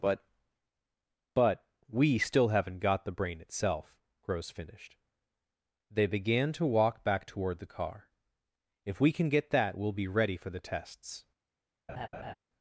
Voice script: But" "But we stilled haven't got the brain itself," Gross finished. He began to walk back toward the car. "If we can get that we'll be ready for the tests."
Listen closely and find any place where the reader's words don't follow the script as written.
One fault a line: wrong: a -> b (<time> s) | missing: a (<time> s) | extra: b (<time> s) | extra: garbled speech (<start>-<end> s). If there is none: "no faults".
wrong: stilled -> still (2.2 s)
wrong: He -> They (5.9 s)